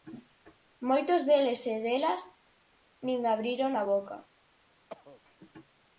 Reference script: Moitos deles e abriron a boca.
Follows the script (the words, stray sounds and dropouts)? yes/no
no